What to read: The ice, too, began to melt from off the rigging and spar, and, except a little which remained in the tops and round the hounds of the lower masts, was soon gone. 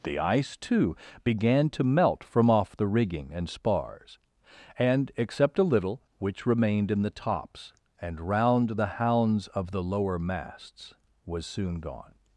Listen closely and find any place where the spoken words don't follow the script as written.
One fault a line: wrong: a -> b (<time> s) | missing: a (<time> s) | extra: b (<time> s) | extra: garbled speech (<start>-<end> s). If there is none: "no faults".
wrong: spar -> spars (3.5 s)